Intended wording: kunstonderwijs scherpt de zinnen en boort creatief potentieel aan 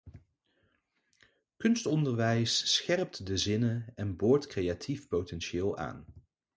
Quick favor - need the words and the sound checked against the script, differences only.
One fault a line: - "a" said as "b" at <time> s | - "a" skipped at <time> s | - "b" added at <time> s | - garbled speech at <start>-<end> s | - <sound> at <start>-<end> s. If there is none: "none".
none